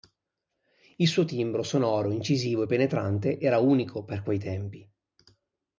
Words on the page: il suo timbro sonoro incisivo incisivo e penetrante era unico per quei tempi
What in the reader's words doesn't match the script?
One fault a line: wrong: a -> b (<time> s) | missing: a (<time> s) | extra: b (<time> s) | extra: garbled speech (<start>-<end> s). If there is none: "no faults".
missing: incisivo (2.6 s)